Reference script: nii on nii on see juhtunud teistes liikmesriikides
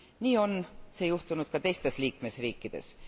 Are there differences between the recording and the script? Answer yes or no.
yes